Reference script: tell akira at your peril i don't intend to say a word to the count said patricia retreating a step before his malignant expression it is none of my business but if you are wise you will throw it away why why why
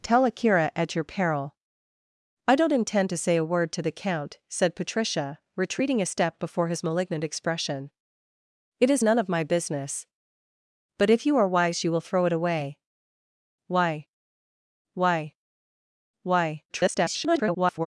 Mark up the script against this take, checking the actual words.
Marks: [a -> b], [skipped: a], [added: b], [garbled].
tell akira at your peril i don't intend to say a word to the count said patricia retreating a step before his malignant expression it is none of my business but if you are wise you will throw it away why why why [garbled]